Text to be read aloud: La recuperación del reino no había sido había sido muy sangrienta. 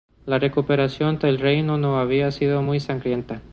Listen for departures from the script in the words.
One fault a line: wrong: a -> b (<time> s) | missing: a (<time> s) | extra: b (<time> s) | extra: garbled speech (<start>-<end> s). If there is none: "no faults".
missing: había sido (2.6 s)